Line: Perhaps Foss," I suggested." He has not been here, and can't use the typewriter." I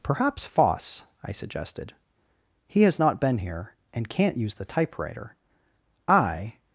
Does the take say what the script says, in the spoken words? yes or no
yes